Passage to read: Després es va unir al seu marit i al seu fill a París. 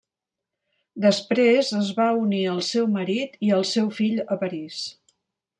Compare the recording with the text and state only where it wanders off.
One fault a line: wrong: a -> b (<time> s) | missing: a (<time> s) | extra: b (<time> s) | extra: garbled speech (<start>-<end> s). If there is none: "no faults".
no faults